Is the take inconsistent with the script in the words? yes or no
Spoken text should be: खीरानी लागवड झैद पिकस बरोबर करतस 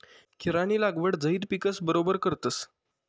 no